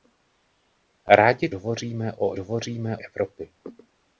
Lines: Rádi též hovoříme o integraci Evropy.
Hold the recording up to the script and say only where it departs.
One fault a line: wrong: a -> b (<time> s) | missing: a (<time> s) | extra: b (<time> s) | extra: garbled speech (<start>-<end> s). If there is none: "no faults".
missing: též (1.5 s)
wrong: integraci -> hovoříme (2.4 s)